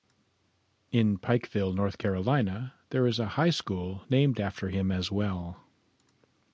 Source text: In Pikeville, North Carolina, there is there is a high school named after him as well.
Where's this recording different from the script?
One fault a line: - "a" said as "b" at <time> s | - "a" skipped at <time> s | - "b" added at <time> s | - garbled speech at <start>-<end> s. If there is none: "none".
- "there is" skipped at 3.2 s